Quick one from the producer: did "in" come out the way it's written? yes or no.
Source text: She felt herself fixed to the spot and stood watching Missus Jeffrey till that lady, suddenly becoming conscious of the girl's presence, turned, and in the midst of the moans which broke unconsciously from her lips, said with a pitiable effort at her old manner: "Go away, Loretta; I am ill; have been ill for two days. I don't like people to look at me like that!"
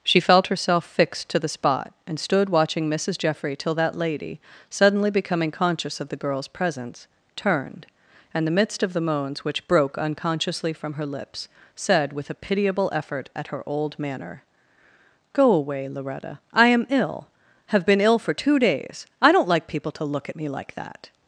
no